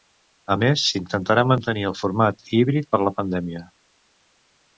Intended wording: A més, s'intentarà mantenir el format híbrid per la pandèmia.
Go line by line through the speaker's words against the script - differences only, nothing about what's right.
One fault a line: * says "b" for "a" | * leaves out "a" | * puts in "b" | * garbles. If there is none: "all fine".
all fine